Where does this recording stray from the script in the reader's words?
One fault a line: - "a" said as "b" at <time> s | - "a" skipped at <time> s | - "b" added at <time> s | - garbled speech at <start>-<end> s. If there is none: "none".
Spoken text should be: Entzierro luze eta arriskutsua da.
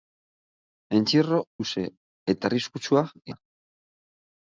none